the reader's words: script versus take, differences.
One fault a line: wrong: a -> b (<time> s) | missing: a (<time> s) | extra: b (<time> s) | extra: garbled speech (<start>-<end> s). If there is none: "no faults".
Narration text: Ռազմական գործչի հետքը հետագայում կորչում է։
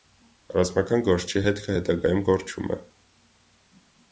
no faults